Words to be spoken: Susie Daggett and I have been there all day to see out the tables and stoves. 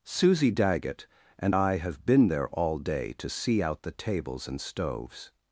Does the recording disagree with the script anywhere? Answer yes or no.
no